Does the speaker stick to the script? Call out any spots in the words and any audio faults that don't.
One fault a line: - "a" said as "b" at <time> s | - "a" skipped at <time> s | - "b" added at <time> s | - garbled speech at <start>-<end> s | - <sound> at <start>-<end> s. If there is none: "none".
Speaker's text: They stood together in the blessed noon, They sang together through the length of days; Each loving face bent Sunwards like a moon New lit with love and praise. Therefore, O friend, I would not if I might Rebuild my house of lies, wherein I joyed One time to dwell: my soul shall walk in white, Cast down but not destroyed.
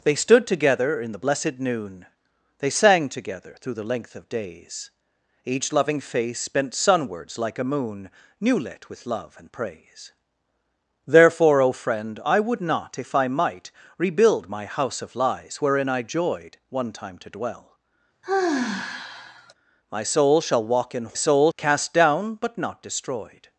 - sigh at 18.2-19.5 s
- "white" said as "soul" at 21.1 s